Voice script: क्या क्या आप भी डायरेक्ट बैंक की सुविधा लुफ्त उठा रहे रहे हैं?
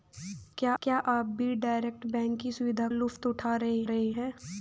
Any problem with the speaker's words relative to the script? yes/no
no